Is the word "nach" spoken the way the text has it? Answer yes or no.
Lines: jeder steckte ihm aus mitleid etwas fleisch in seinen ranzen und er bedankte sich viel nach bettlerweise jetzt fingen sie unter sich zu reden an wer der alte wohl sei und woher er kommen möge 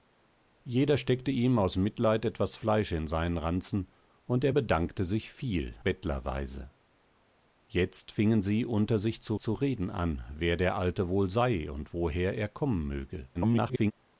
no